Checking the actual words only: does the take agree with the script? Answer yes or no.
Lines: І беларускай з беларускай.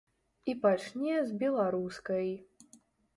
no